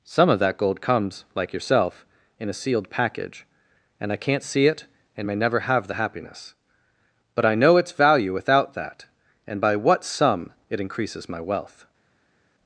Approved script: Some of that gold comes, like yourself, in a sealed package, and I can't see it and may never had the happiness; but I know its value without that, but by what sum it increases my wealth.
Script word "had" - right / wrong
wrong